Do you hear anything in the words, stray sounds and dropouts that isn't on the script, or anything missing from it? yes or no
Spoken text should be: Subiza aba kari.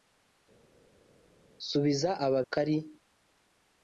no